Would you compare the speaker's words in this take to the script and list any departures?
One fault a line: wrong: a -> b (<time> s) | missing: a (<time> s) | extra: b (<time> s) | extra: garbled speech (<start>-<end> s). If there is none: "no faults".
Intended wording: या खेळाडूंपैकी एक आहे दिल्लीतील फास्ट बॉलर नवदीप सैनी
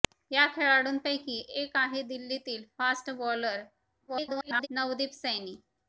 extra: garbled speech (4.1-4.7 s)